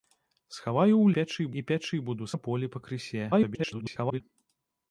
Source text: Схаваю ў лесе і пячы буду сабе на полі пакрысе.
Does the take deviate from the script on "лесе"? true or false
true